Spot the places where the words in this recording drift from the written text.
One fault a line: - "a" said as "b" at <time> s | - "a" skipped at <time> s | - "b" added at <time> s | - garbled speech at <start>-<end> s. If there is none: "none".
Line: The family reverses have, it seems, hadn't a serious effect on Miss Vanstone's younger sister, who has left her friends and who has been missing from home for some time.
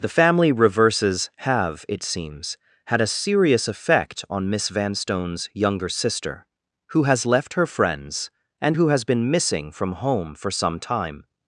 - "hadn't" said as "had" at 2.9 s